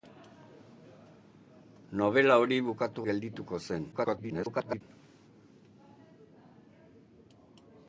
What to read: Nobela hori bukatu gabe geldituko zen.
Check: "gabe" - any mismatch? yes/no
yes